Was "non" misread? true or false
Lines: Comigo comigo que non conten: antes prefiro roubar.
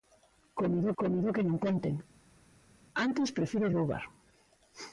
false